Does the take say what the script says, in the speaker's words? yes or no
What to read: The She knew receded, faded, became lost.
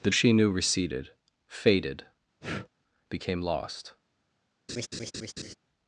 yes